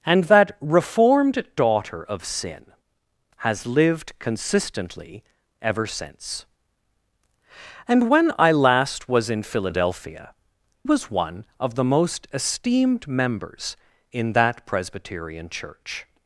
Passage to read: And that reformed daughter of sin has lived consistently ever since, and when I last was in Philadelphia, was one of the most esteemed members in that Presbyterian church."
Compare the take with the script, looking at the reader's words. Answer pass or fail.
pass